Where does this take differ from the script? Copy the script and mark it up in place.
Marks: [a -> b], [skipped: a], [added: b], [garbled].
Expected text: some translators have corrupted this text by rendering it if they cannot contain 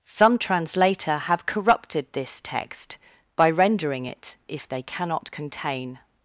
some [translators -> translator] have corrupted this text by rendering it if they cannot contain